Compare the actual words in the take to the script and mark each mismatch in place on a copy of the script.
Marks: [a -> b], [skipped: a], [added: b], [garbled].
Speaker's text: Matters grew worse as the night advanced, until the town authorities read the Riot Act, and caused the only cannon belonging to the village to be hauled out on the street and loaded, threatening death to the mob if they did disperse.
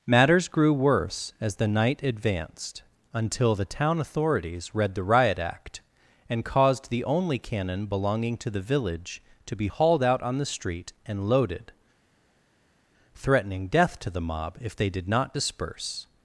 Matters grew worse as the night advanced, until the town authorities read the Riot Act, and caused the only cannon belonging to the village to be hauled out on the street and loaded, threatening death to the mob if they did [added: not] disperse.